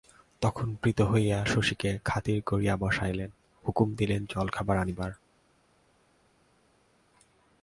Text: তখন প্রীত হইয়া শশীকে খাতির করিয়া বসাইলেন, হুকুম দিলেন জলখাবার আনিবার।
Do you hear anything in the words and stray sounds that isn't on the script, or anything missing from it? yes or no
no